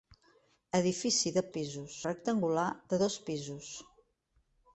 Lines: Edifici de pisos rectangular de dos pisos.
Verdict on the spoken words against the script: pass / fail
pass